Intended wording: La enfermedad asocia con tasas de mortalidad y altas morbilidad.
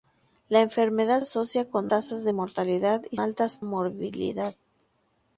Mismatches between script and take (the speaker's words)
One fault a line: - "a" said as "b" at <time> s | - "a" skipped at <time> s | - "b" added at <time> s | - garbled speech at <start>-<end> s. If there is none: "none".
none